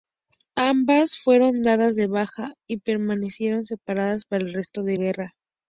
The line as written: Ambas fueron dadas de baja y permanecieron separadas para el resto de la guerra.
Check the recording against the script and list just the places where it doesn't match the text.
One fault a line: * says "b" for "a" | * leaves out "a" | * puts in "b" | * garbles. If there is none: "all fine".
* leaves out "la"